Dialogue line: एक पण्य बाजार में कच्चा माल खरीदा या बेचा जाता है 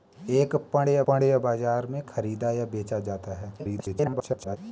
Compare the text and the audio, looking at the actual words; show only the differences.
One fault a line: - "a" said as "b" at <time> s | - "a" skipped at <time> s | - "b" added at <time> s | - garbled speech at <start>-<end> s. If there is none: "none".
- "पण्य" added at 1.1 s
- "कच्चा माल" skipped at 2.0 s
- garbled speech at 3.6-4.6 s